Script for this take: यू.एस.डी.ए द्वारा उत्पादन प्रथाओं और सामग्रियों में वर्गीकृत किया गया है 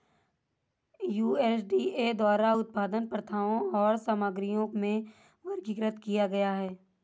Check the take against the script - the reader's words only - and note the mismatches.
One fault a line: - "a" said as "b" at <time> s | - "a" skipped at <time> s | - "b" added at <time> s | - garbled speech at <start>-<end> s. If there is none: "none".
none